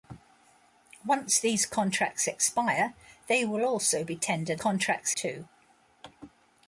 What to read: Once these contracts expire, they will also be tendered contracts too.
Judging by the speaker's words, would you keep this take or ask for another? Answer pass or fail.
pass